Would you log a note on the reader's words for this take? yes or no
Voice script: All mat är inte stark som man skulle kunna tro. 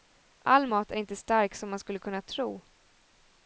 no